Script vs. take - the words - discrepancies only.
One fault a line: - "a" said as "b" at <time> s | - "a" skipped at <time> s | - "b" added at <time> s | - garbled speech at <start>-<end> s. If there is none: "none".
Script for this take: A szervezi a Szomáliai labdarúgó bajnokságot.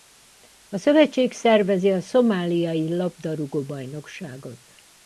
- "szövetség" added at 0.8 s